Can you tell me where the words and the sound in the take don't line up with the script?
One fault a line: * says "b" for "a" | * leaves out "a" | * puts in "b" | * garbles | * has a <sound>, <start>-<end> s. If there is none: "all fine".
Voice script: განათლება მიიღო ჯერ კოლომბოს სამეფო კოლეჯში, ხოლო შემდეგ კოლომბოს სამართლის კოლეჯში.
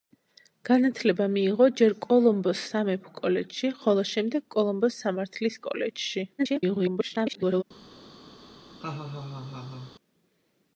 * garbles
* has a laugh, 8.8-9.9 s